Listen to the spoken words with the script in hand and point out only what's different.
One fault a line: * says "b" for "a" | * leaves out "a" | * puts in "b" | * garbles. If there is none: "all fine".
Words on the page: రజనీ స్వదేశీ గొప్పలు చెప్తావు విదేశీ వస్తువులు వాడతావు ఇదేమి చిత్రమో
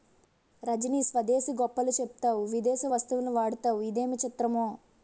all fine